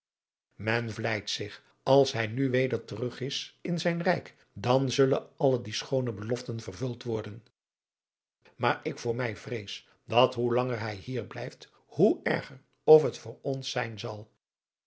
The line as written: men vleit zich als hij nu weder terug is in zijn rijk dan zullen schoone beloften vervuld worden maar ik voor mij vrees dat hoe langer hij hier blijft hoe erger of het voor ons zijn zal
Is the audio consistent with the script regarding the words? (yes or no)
no